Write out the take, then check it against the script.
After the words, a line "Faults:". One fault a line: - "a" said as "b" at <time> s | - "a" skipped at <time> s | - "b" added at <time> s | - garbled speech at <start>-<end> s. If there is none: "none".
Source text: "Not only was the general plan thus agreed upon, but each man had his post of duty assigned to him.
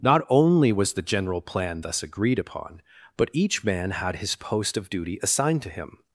"Not only was the general plan thus agreed upon, but each man had his post of duty assigned to him.
Faults:
none